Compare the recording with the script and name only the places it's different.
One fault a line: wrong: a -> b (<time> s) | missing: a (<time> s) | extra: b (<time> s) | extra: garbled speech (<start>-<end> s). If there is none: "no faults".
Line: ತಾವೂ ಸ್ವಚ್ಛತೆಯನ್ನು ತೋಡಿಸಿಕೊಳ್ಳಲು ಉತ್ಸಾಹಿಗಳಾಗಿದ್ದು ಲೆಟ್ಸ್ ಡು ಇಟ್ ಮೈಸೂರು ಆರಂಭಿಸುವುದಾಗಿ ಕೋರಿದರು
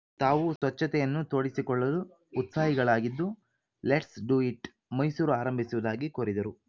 no faults